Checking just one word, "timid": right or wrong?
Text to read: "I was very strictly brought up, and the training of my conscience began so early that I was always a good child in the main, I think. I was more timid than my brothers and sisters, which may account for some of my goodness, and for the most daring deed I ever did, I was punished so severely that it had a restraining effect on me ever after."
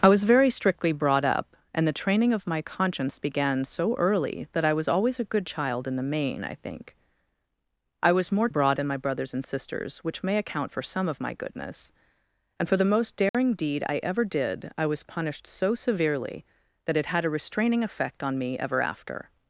wrong